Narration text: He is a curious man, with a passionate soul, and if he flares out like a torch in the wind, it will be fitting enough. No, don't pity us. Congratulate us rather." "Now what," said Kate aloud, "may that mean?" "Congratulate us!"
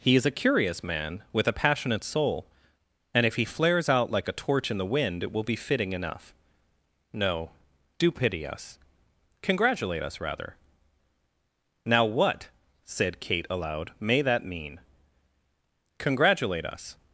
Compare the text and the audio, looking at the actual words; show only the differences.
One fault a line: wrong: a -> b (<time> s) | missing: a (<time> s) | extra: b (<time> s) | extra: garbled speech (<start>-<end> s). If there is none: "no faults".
wrong: don't -> do (8.0 s)